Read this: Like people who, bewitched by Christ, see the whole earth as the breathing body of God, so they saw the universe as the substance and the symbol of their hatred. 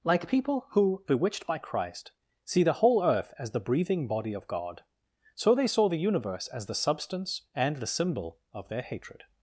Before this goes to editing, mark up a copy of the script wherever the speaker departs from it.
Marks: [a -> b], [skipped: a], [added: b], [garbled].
Like people who, bewitched by Christ, see the whole earth as the breathing body of God, so they saw the universe as the substance and the symbol of their hatred.